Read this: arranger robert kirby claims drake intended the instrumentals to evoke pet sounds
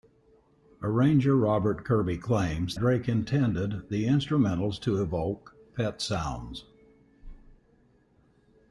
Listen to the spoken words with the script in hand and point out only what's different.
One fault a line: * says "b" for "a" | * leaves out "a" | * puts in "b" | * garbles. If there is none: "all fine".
all fine